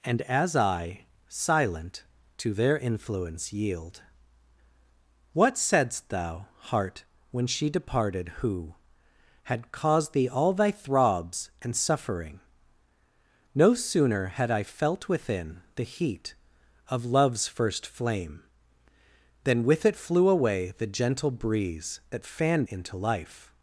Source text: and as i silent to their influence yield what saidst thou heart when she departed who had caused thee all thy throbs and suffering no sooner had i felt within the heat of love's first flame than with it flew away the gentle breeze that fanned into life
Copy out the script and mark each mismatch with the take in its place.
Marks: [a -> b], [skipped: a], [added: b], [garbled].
and as i silent to their influence yield what saidst thou heart when she departed who had caused thee all thy throbs and suffering no sooner had i felt within the heat of love's first flame than with it flew away the gentle breeze that fanned into life